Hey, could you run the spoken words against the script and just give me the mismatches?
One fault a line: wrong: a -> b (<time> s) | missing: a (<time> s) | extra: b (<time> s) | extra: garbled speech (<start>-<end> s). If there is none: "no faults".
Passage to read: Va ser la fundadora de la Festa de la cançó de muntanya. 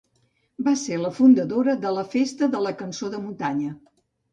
no faults